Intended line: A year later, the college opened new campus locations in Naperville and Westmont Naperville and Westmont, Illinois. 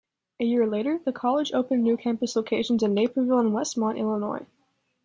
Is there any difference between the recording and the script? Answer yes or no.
yes